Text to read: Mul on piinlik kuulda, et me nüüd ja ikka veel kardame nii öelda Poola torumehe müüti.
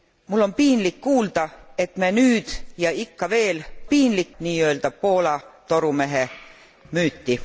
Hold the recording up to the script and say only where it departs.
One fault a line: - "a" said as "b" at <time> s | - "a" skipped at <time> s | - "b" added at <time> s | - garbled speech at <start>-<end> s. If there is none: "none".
- "kardame" said as "piinlik" at 3.9 s